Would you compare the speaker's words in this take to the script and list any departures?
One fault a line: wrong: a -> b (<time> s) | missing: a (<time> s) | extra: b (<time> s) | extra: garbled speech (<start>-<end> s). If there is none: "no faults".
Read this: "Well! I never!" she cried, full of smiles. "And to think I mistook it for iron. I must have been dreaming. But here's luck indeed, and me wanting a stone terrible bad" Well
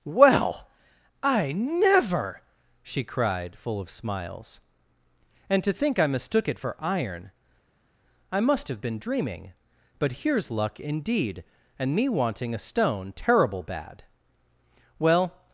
no faults